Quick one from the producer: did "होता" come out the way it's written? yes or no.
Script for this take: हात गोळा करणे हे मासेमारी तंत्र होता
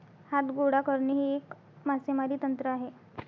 no